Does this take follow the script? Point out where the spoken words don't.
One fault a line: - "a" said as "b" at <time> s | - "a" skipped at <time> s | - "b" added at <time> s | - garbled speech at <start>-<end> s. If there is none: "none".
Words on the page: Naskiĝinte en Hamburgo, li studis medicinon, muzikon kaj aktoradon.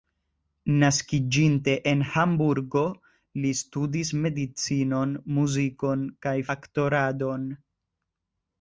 none